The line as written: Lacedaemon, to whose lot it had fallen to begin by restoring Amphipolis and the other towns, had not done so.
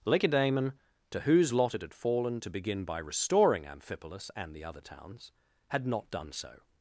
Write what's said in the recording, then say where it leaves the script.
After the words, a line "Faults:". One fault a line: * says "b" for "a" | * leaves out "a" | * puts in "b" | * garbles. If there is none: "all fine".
Lacedaemon, to whose lot it had fallen to begin by restoring Amphipolis and the other towns, had not done so.
Faults:
all fine